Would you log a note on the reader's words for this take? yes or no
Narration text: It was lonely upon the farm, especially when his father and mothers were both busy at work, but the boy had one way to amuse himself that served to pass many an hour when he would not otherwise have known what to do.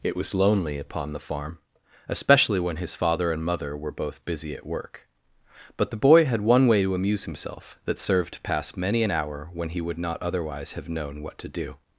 yes